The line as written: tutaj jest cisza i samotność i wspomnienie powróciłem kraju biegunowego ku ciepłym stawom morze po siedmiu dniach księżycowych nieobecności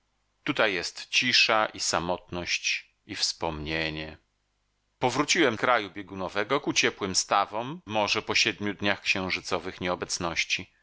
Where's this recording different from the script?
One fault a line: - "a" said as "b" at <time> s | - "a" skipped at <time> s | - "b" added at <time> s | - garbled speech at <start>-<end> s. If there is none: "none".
none